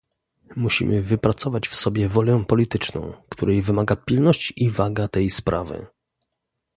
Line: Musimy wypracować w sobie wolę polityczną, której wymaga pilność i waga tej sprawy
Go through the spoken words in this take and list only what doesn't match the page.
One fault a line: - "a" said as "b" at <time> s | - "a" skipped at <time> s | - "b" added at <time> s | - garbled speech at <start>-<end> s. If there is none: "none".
none